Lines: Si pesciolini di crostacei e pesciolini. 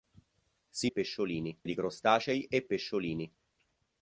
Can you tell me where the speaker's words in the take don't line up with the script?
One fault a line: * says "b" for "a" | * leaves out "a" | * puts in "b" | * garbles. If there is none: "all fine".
all fine